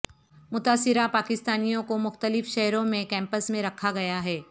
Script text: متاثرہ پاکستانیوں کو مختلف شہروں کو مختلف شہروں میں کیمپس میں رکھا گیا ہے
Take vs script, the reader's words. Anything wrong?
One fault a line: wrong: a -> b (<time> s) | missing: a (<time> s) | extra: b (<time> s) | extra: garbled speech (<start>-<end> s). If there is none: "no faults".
missing: کو مختلف شہروں (2.8 s)